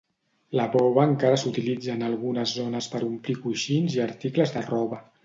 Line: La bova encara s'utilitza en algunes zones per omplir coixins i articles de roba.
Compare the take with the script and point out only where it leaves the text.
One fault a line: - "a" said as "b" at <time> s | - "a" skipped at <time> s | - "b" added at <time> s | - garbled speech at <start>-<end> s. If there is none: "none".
none